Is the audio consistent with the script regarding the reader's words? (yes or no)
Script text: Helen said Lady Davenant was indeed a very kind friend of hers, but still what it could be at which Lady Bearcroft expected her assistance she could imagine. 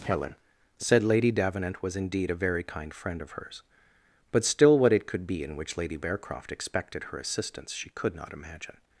no